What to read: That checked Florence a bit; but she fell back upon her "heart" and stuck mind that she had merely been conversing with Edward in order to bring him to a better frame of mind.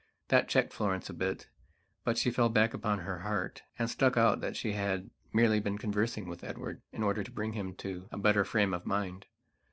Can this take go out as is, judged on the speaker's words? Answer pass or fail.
fail